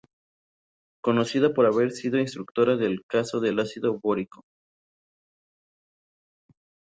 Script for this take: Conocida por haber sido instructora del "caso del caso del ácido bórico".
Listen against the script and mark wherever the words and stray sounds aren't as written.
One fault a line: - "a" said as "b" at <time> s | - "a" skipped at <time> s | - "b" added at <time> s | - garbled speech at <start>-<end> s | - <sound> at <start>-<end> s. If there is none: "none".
- "caso del" skipped at 3.6 s